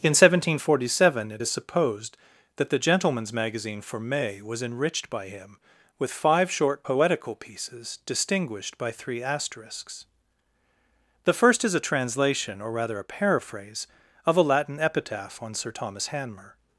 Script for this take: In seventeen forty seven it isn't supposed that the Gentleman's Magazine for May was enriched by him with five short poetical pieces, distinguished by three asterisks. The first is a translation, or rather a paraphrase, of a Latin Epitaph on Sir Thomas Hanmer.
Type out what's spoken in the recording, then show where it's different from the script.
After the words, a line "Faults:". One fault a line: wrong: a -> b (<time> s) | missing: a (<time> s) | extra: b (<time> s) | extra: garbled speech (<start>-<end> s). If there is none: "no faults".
In seventeen forty seven it is supposed that the Gentleman's Magazine for May was enriched by him with five short poetical pieces, distinguished by three asterisks. The first is a translation, or rather a paraphrase, of a Latin Epitaph on Sir Thomas Hanmer.
Faults:
wrong: isn't -> is (1.4 s)